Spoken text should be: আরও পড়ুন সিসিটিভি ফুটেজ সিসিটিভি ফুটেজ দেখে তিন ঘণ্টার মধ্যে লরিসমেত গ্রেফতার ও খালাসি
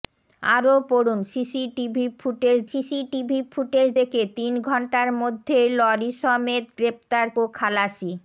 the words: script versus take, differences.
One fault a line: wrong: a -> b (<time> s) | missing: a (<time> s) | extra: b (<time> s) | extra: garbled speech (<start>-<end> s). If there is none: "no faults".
no faults